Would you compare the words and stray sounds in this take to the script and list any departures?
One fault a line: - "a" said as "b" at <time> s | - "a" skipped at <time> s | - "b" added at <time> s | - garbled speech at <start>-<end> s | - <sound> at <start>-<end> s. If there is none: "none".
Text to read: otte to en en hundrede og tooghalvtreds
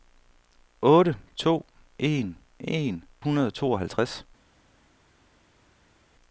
none